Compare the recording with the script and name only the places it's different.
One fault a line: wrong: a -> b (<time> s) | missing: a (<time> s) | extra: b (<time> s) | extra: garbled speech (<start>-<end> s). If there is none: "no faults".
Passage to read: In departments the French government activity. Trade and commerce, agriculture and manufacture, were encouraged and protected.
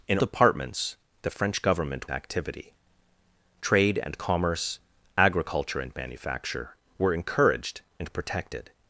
no faults